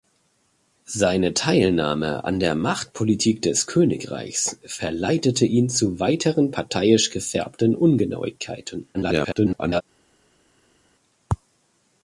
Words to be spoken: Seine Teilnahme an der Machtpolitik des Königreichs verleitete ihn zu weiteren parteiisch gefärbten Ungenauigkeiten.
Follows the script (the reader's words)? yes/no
no